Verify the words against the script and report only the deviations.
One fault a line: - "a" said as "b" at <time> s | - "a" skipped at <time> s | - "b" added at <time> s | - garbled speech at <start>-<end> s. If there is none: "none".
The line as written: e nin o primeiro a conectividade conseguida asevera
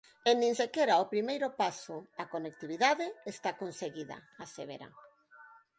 - "sequera" added at 0.6 s
- "paso" added at 1.6 s
- "está" added at 3.3 s